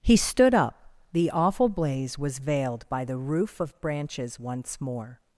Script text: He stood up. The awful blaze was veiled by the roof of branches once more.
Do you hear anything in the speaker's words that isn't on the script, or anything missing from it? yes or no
no